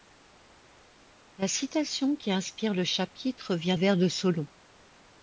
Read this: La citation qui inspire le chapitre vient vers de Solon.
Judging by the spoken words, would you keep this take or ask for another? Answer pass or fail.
pass